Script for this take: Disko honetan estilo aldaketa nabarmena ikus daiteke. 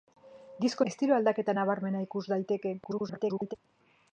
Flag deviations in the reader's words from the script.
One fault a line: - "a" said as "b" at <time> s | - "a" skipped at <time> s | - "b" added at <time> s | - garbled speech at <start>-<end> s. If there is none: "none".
- "honetan" skipped at 0.8 s
- garbled speech at 2.8-3.6 s